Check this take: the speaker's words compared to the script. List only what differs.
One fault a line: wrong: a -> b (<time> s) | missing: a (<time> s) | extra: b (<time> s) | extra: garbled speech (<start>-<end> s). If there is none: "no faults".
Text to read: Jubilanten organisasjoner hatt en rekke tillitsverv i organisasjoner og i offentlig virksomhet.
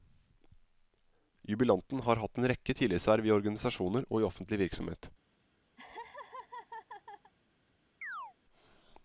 wrong: organisasjoner -> har (2.0 s)